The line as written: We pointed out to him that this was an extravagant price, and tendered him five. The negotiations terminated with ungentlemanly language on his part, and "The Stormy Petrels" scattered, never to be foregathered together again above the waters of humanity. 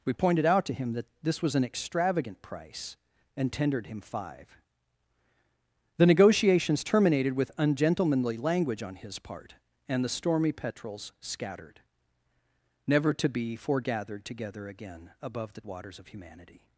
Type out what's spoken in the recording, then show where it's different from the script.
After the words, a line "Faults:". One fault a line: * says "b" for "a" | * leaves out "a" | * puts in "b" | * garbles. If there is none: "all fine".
We pointed out to him that this was an extravagant price, and tendered him five. The negotiations terminated with ungentlemanly language on his part, and "The Stormy Petrels" scattered, never to be foregathered together again above the waters of humanity.
Faults:
all fine